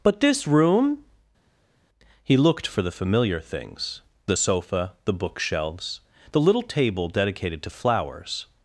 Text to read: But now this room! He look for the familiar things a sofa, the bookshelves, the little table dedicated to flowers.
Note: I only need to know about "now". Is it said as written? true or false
false